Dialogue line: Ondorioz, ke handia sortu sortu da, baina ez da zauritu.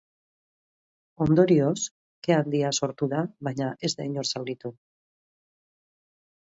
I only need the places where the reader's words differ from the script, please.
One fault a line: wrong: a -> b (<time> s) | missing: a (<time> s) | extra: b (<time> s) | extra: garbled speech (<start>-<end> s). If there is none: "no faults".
missing: sortu (3.1 s)
extra: inor (4.1 s)